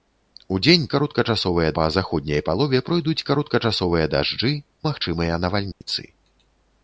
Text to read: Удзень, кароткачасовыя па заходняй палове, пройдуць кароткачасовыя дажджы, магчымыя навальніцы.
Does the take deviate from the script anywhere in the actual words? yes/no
no